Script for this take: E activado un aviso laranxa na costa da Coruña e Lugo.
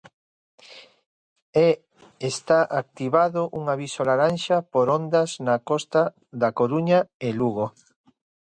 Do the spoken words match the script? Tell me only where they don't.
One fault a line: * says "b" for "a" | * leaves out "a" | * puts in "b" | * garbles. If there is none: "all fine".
* puts in "está"
* puts in "por ondas"